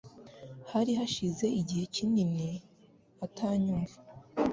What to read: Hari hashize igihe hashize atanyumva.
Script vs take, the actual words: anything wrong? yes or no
yes